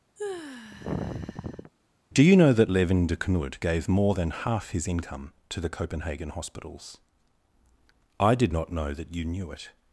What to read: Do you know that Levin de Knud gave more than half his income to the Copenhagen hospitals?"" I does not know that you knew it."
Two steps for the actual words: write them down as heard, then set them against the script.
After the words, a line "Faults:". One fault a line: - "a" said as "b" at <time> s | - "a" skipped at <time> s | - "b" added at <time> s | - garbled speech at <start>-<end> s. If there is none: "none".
Do you know that Levin de Knud gave more than half his income to the Copenhagen hospitals?"" I did not know that you knew it."
Faults:
- "does" said as "did" at 8.3 s